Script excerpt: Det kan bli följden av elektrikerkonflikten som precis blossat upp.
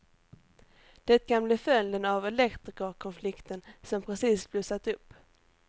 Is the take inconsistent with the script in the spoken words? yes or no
no